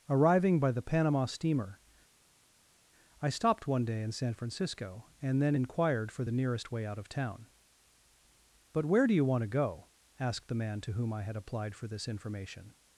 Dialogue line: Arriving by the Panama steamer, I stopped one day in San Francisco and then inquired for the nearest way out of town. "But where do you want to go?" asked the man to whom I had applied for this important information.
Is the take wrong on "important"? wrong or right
wrong